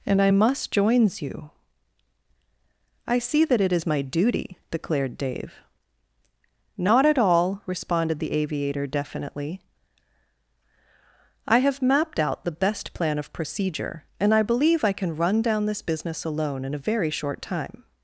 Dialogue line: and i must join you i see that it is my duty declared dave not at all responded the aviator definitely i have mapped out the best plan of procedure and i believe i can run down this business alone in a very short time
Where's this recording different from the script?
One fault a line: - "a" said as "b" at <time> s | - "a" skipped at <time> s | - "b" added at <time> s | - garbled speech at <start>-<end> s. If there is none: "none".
- "join" said as "joins" at 0.7 s